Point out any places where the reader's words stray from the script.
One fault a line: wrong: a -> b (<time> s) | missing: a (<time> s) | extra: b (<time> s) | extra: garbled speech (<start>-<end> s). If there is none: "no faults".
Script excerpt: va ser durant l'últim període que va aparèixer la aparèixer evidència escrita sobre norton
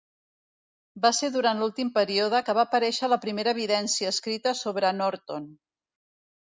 wrong: aparèixer -> primera (3.3 s)